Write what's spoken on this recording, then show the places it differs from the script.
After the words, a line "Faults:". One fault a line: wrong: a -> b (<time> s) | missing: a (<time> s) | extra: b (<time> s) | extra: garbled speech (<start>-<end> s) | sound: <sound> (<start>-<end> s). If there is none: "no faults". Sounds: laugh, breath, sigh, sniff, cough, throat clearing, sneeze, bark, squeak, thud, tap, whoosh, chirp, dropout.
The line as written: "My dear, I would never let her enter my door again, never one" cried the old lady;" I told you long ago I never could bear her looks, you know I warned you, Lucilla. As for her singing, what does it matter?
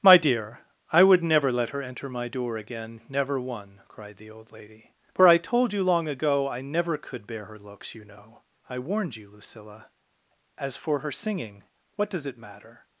"My dear, I would never let her enter my door again, never one" cried the old lady;" for I told you long ago I never could bear her looks, you know I warned you, Lucilla. As for her singing, what does it matter?
Faults:
extra: for (5.1 s)